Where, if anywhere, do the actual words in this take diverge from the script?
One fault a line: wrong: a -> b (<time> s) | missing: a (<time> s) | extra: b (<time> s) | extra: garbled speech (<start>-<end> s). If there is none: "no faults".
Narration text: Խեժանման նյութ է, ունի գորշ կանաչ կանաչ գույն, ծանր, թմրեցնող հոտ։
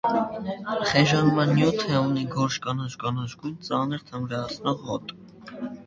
no faults